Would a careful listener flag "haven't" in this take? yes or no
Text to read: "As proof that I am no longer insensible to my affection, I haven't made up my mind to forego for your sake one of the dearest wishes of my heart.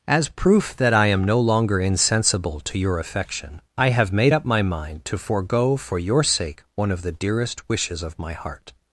yes